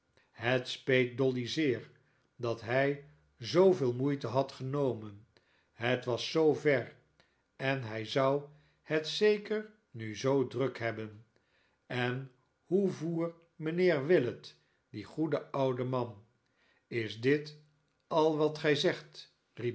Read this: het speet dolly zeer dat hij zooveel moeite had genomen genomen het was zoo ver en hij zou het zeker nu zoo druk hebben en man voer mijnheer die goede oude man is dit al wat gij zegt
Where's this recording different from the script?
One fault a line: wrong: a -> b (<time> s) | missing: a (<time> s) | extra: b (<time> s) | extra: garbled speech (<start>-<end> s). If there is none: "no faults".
missing: genomen (5.3 s)
wrong: man -> hoe (12.6 s)
extra: willet (14.1 s)